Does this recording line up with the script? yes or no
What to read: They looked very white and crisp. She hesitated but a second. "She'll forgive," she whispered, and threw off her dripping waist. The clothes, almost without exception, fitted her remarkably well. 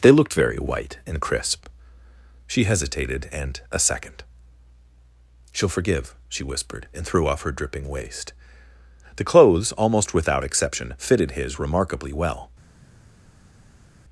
no